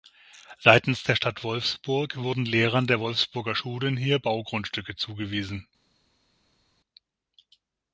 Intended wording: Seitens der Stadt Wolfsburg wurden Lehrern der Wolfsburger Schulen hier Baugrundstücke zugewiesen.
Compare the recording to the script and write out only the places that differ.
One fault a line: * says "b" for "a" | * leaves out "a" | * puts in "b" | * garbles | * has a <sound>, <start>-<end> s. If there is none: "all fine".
all fine